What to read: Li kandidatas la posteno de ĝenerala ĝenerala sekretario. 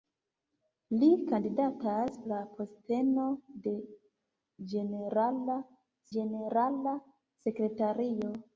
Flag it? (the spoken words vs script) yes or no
no